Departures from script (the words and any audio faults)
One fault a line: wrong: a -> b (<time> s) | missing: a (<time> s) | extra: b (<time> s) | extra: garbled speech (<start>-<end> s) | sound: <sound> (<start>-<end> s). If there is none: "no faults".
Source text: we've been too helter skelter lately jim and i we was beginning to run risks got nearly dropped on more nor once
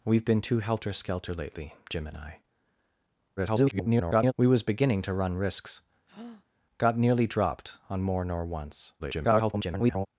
extra: garbled speech (3.4-4.3 s)
sound: breath (6.1-6.4 s)
extra: garbled speech (9.0-10.1 s)